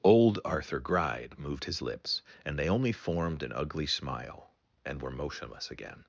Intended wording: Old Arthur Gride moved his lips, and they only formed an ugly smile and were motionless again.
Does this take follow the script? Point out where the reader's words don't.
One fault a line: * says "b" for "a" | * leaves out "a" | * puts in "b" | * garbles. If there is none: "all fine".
all fine